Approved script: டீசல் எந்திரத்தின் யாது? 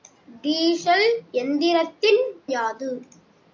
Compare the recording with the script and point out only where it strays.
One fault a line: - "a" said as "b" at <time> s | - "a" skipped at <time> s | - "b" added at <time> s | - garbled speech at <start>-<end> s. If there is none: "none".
none